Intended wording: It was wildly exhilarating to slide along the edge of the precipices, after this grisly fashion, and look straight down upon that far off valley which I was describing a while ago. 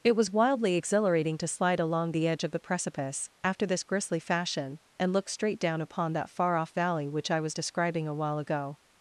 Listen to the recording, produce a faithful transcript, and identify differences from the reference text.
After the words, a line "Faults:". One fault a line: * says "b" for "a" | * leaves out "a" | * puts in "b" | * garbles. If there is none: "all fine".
It was wildly exhilarating to slide along the edge of the precipice, after this grisly fashion, and look straight down upon that far off valley which I was describing a while ago.
Faults:
* says "precipice" for "precipices"